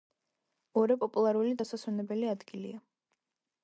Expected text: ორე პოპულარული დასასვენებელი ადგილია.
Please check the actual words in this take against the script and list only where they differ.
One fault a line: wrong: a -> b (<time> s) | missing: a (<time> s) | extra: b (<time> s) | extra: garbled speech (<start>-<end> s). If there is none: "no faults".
no faults